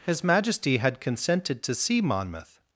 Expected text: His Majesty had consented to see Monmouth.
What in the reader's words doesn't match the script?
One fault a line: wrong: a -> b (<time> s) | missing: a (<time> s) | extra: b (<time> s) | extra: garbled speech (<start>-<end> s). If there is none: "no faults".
no faults